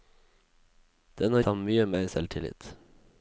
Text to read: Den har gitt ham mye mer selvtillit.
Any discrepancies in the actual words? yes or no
yes